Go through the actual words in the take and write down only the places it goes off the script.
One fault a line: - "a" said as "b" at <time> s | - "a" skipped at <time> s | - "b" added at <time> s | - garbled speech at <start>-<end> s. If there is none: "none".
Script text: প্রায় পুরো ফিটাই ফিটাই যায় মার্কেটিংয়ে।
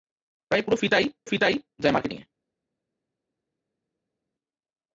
none